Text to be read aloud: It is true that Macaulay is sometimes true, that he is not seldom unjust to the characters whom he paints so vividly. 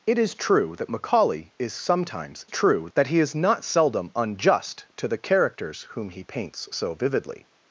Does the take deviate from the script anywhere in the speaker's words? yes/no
no